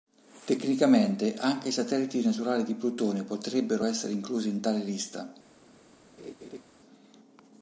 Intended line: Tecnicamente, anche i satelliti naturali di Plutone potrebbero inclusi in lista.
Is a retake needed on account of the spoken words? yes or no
yes